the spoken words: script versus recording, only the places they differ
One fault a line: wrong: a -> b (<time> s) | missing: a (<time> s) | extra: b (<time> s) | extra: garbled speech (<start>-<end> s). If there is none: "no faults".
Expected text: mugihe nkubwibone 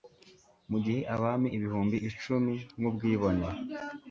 extra: abami ibihumbi icumi (1.1 s)